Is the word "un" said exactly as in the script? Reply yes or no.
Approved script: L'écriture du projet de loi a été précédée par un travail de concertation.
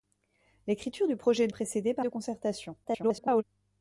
no